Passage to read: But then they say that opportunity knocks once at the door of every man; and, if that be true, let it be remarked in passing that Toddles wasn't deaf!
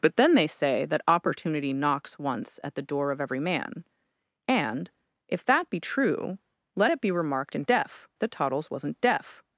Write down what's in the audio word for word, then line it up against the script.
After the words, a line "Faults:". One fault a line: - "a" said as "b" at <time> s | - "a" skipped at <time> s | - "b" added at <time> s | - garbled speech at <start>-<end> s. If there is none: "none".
But then they say that opportunity knocks once at the door of every man; and, if that be true, let it be remarked in deaf that Toddles wasn't deaf!
Faults:
- "passing" said as "deaf" at 7.7 s